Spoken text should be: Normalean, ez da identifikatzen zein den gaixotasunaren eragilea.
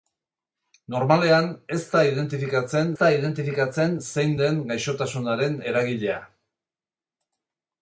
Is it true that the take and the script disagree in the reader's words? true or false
true